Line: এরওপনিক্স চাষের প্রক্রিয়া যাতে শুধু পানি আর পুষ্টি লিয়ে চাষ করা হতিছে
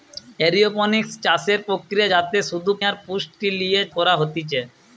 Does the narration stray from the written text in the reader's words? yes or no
yes